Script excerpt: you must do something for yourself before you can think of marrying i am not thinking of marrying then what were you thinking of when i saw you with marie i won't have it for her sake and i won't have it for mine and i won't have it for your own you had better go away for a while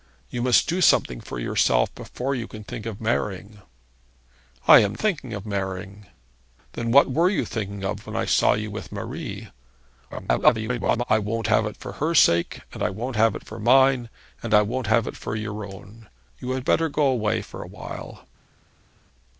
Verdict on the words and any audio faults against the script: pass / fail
fail